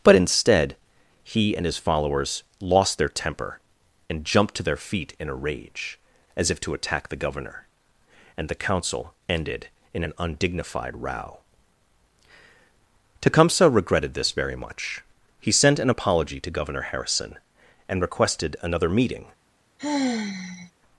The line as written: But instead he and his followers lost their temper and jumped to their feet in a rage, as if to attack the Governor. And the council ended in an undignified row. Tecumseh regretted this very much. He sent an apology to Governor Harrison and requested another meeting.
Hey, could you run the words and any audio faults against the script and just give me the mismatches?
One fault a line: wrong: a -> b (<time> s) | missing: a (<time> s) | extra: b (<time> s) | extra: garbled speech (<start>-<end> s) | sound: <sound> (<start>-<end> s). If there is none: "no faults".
sound: sigh (19.8-20.7 s)